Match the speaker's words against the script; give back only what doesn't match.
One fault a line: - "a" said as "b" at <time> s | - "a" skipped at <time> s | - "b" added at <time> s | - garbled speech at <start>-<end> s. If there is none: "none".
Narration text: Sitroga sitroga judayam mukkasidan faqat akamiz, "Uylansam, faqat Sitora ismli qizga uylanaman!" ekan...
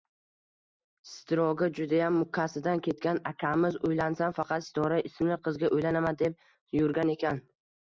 - "sitroga" skipped at 1.7 s
- "faqat" said as "ketgan" at 2.9 s
- "deb yurgan" added at 6.3 s